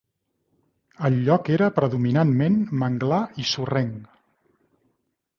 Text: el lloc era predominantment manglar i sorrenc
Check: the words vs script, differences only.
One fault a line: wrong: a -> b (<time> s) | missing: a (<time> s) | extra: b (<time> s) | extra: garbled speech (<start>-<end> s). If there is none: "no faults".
no faults